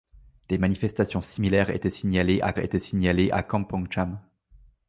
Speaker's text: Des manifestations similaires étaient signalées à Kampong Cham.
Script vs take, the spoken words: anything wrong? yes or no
yes